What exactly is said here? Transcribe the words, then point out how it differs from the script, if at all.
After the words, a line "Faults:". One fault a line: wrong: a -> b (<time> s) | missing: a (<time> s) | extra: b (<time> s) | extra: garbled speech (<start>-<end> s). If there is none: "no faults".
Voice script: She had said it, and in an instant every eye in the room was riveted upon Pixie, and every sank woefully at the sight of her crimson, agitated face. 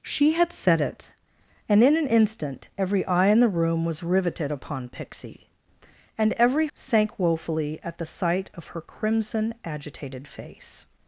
She had said it, and in an instant every eye in the room was riveted upon Pixie, and every sank woefully at the sight of her crimson, agitated face.
Faults:
no faults